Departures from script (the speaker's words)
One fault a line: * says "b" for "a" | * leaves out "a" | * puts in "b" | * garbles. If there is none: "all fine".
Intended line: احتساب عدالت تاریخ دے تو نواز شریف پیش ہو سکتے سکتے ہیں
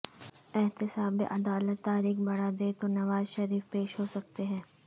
* puts in "بڑھا"
* leaves out "سکتے"